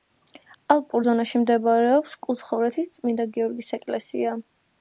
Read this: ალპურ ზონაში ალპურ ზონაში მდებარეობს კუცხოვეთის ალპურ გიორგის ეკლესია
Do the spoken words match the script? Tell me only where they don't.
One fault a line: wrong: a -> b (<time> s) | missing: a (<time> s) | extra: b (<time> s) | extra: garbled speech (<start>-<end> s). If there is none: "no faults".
missing: ალპურ ზონაში (1.4 s)
wrong: ალპურ -> წმინდა (3.0 s)